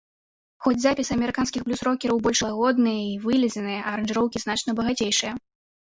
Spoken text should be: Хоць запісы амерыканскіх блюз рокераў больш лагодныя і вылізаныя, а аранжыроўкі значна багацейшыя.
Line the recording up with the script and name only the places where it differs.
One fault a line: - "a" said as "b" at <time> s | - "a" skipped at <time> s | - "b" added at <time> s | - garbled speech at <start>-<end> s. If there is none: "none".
none